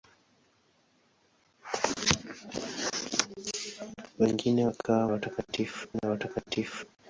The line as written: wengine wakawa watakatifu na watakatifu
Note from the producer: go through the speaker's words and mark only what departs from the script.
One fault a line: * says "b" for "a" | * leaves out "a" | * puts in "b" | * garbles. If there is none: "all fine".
all fine